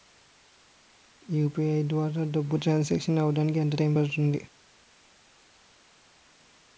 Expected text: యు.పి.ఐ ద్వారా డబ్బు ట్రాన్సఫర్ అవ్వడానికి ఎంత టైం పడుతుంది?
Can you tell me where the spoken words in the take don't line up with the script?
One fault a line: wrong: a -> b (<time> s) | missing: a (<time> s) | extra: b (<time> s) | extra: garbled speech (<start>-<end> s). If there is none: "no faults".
no faults